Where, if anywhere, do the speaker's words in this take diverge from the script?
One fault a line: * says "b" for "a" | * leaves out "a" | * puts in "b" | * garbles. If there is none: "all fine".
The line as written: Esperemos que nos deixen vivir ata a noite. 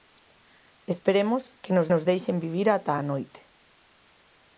* puts in "nos"